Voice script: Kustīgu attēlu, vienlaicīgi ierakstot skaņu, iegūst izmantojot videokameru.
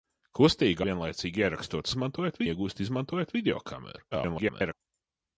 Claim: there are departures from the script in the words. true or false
true